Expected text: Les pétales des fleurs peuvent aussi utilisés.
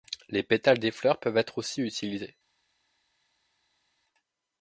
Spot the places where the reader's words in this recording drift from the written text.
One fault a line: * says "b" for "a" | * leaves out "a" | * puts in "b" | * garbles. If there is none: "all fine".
* puts in "être"